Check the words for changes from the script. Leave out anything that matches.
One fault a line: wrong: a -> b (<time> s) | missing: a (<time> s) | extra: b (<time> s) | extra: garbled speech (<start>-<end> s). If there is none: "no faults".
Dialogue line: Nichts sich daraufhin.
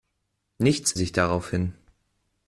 no faults